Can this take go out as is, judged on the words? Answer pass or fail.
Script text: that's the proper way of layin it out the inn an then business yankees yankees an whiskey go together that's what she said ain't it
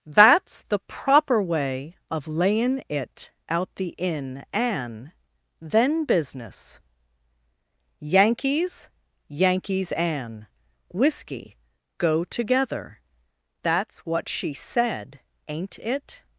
pass